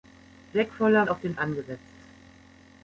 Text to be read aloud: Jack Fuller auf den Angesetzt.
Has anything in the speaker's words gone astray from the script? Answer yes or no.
no